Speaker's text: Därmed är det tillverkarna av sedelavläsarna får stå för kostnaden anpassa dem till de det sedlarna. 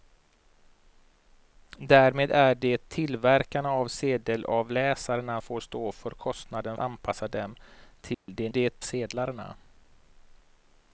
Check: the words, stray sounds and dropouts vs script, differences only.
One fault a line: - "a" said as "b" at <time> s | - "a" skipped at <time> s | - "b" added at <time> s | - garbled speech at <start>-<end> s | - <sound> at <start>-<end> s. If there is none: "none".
- dropout at 8.1-8.3 s